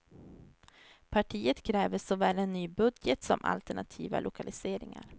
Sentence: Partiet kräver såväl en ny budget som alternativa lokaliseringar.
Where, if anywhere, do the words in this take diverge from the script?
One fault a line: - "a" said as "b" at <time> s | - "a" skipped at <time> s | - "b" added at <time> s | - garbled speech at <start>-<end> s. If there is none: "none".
none